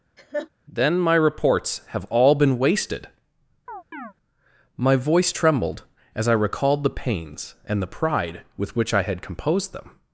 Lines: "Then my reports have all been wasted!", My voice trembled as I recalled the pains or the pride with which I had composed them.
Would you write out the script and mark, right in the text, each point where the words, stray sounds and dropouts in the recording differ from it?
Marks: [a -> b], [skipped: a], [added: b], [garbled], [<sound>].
[laugh] "Then my reports have all been wasted!", [chirp] My voice trembled as I recalled the pains [or -> and] the pride with which I had composed them.